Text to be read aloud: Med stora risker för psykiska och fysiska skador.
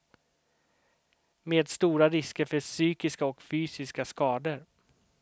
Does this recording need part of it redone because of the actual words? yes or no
no